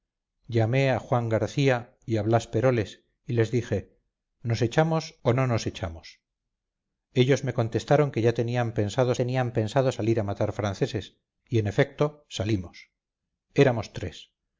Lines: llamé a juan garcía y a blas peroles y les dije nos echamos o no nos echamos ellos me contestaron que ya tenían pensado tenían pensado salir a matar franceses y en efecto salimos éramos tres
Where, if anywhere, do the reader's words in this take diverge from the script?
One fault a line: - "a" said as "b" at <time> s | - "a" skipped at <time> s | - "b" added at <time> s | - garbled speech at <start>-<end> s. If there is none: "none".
none